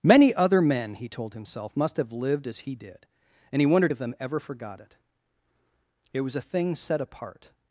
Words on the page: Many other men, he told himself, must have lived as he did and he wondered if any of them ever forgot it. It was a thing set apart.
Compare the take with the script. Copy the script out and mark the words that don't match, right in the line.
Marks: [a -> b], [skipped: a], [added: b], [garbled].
Many other men, he told himself, must have lived as he did and he wondered [skipped: if any] of them ever forgot it. It was a thing set apart.